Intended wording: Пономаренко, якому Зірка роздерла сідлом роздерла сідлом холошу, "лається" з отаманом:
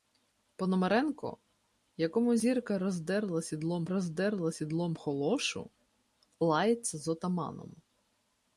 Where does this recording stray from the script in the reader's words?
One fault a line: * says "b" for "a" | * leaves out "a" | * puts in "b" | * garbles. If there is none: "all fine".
all fine